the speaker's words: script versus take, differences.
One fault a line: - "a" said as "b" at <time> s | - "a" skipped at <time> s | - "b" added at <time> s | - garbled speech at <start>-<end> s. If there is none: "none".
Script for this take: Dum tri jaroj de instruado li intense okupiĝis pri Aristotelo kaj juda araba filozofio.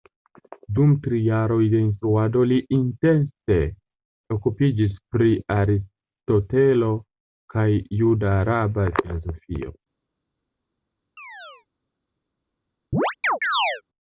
none